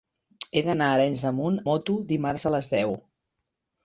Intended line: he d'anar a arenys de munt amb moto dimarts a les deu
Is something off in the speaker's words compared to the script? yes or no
yes